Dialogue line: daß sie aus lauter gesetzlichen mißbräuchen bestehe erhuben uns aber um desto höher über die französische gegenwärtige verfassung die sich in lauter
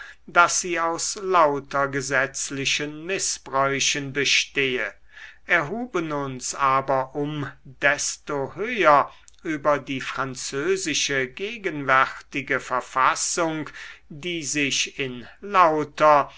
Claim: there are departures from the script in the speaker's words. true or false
false